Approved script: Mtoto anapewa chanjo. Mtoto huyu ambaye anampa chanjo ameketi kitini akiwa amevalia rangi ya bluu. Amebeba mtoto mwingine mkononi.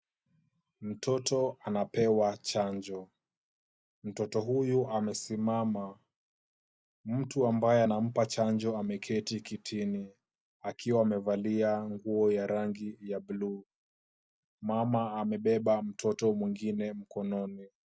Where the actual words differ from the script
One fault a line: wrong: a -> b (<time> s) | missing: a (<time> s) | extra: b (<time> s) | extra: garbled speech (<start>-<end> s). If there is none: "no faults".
extra: amesimama mtu (4.9 s)
extra: nguo ya (11.9 s)
extra: Mama (14.6 s)